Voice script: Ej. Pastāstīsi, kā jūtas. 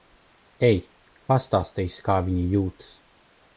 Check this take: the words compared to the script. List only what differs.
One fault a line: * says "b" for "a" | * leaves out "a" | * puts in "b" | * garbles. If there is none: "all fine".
* puts in "viņa"